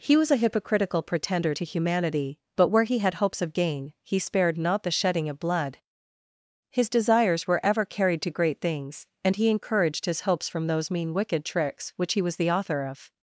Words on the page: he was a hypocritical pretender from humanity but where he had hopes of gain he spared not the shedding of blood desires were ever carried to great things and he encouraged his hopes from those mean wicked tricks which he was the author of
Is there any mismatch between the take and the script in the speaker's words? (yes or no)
yes